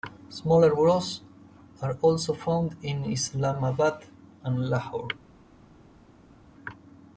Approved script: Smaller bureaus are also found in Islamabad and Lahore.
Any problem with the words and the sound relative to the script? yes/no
no